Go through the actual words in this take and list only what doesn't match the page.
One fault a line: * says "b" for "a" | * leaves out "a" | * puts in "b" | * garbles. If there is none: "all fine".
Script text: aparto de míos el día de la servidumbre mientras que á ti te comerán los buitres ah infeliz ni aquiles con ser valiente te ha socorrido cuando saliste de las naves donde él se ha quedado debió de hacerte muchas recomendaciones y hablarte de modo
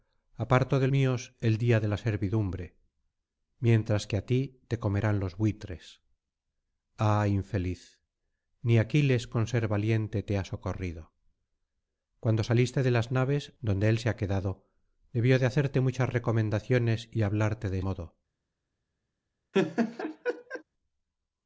all fine